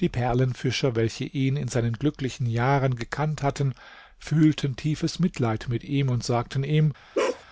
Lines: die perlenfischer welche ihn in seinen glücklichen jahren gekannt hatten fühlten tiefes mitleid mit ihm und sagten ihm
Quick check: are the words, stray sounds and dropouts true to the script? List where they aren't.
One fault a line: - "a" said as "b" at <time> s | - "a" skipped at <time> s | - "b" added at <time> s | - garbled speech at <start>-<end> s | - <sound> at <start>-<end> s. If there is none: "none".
- bark at 7.1-7.4 s